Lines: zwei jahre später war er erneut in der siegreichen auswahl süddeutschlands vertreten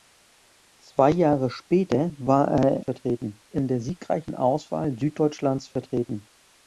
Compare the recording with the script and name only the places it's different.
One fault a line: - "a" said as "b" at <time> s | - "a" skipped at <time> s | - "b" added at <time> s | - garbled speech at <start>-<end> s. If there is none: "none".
- "erneut" said as "vertreten" at 2.8 s